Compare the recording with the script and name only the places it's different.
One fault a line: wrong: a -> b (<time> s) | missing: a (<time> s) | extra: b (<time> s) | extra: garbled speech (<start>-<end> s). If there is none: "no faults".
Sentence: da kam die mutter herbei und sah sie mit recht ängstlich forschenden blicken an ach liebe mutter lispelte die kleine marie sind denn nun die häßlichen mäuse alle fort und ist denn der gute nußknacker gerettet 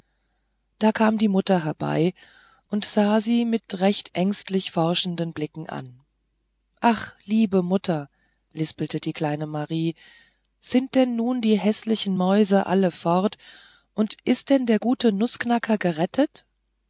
no faults